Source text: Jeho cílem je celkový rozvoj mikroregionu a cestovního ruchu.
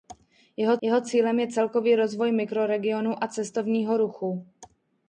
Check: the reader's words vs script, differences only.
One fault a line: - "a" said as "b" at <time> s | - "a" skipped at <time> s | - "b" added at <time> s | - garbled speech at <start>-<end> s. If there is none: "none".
- "jeho" added at 0.8 s